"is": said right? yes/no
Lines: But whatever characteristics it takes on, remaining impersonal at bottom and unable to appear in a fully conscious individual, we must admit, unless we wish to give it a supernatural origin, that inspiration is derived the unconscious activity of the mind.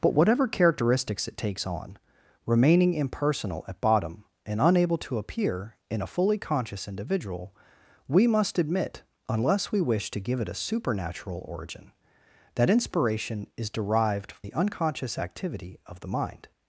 yes